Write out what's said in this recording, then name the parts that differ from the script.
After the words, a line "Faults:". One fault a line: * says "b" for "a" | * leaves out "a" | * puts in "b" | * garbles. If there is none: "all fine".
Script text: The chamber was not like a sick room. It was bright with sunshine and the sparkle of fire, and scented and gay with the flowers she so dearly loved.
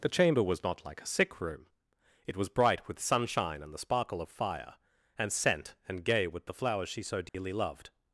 The chamber was not like a sick room. It was bright with sunshine and the sparkle of fire, and scent and gay with the flowers she so dearly loved.
Faults:
* says "scent" for "scented"